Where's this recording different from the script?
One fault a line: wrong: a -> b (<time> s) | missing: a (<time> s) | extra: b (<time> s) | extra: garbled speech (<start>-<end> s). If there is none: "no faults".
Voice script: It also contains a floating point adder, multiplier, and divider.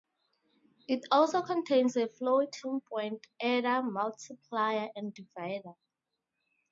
no faults